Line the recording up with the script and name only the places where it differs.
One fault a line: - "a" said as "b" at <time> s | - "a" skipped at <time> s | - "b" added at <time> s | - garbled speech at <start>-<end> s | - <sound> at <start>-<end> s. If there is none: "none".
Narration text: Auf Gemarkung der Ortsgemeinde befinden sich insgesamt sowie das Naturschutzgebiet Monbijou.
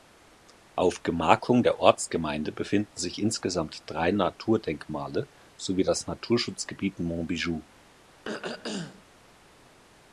- "drei Naturdenkmale" added at 3.9 s
- throat clearing at 8.2-9.0 s